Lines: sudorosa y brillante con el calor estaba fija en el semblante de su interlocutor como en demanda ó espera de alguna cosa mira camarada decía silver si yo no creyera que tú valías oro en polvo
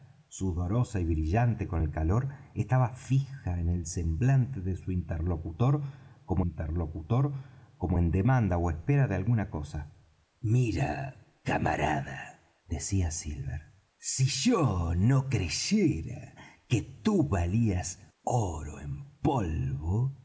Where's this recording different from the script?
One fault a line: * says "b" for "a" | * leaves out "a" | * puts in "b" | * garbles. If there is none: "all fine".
* puts in "interlocutor como"